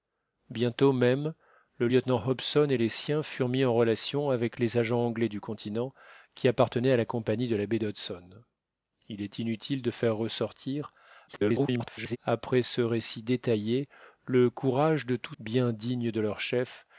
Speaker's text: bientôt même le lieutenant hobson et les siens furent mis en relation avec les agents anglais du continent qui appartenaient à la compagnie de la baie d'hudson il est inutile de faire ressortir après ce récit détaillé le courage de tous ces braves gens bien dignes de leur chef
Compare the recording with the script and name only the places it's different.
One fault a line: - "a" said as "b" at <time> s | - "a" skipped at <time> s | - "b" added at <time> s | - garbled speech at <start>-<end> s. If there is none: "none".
- garbled speech at 11.3-12.2 s
- "ces braves gens" skipped at 15.3 s